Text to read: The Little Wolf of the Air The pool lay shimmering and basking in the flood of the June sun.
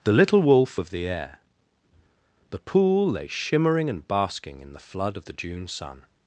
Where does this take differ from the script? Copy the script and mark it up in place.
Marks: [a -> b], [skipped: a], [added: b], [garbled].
The Little Wolf of the Air The pool lay shimmering and basking in the flood of the June sun.